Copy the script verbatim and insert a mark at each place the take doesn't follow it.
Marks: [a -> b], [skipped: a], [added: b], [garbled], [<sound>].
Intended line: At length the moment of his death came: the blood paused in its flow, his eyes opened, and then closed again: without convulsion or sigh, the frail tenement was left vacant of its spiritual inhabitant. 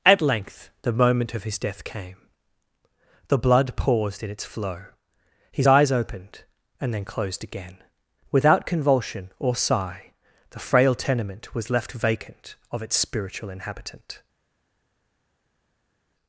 At length the moment of his death came: the blood paused in its flow, his eyes opened, and then closed again: without convulsion or sigh, the frail tenement was left vacant of its spiritual inhabitant.